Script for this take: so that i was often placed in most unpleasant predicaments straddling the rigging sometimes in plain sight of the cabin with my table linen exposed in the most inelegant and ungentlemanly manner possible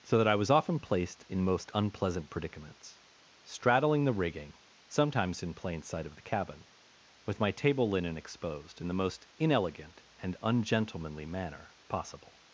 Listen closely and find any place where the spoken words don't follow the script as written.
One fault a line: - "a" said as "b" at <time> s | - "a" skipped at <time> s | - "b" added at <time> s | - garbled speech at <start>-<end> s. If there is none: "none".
none